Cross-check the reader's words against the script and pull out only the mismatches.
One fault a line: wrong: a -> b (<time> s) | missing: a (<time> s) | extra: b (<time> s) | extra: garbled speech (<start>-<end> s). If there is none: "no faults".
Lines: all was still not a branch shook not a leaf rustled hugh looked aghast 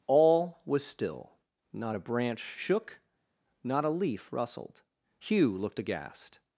no faults